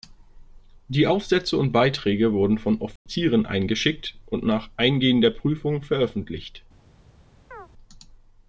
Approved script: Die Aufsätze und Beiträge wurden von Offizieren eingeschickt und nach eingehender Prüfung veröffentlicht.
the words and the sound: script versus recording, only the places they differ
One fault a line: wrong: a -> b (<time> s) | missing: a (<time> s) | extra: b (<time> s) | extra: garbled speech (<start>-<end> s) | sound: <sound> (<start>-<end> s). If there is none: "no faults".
sound: dropout (3.0-3.1 s)
sound: chirp (7.5-7.7 s)